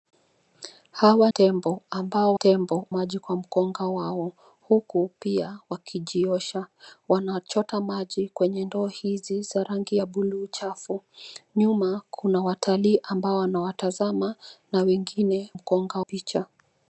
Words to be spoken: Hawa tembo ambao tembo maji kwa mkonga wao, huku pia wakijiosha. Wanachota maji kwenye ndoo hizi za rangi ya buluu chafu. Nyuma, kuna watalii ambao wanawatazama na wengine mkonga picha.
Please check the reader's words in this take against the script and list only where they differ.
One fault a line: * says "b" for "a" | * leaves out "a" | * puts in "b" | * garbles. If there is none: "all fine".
all fine